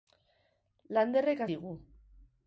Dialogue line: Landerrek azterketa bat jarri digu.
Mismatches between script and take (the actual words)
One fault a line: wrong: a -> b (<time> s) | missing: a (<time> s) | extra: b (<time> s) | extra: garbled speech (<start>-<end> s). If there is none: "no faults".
missing: azterketa bat jarri (1.4 s)